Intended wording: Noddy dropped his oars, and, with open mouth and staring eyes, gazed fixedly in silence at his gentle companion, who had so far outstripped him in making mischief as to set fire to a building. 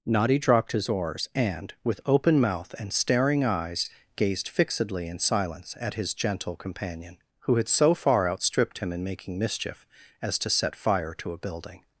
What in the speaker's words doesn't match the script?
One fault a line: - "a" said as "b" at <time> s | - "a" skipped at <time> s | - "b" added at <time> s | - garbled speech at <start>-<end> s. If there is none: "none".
none